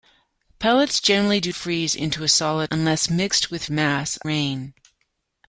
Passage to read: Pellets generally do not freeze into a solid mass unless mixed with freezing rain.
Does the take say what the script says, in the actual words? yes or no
no